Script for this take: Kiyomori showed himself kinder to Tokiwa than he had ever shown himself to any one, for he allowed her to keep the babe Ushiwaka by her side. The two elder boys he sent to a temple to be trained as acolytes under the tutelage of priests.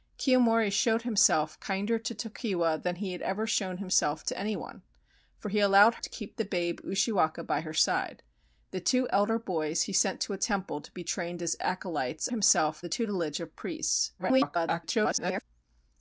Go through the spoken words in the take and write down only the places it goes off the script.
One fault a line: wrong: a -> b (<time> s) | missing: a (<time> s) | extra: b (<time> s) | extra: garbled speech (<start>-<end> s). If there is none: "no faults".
missing: her (5.9 s)
wrong: under -> himself (12.3 s)
extra: garbled speech (14.2-15.4 s)